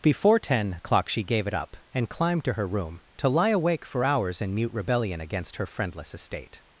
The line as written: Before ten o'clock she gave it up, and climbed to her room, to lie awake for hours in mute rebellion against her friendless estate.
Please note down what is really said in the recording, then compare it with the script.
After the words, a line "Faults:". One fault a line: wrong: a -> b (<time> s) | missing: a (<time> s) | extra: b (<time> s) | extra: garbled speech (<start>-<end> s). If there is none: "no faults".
Before ten o'clock she gave it up, and climbed to her room, to lie awake for hours in mute rebellion against her friendless estate.
Faults:
no faults